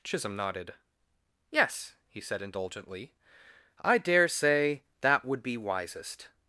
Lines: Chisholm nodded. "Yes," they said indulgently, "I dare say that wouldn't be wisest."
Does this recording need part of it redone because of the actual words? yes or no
yes